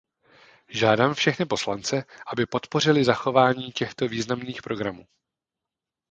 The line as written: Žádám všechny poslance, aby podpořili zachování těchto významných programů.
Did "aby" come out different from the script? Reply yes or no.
no